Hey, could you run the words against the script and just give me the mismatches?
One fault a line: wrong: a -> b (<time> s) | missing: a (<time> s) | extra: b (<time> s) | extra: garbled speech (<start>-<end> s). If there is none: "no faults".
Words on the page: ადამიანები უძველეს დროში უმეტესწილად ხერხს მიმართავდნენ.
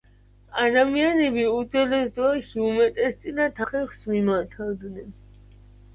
no faults